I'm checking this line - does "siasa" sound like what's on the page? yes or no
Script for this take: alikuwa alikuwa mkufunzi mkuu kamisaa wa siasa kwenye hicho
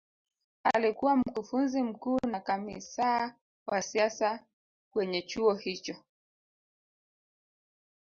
yes